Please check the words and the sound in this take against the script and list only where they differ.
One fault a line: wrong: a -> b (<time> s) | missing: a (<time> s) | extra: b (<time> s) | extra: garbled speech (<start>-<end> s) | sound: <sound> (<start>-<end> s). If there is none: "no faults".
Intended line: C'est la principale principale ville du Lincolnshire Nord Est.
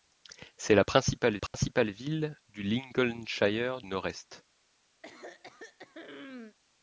sound: dropout (1.5-1.5 s)
sound: throat clearing (5.0-6.6 s)